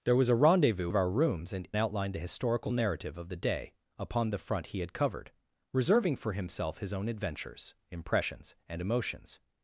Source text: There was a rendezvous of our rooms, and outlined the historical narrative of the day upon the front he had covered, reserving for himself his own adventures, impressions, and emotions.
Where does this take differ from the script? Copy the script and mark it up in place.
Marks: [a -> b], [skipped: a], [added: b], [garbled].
There was a rendezvous of our rooms, and outlined the historical narrative of the day upon the front he had covered, reserving for himself his own adventures, impressions, and emotions.